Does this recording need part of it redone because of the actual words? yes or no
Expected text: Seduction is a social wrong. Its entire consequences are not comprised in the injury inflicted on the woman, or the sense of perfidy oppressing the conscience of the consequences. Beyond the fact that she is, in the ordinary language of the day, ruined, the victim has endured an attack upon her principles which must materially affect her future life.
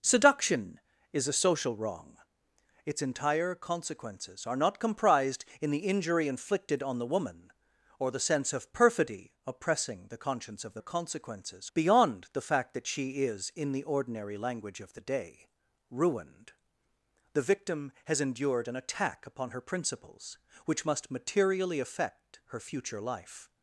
no